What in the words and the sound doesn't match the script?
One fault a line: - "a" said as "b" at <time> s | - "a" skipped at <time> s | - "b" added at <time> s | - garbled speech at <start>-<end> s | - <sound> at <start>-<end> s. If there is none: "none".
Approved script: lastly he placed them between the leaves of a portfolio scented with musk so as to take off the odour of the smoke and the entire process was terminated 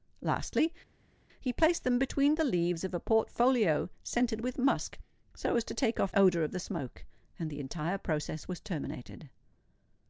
- "the" skipped at 6.1 s